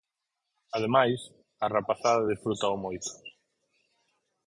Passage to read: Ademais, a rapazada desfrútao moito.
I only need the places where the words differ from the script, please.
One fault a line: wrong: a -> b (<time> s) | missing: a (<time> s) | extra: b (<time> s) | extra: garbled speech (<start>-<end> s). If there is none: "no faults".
no faults